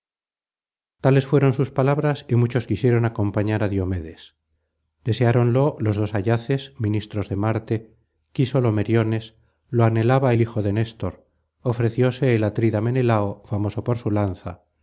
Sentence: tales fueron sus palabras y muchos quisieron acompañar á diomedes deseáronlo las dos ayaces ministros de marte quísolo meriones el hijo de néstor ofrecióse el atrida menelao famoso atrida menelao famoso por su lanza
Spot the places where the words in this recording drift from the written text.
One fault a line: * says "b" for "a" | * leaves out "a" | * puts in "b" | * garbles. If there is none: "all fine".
* says "los" for "las"
* puts in "lo anhelaba"
* leaves out "atrida menelao famoso"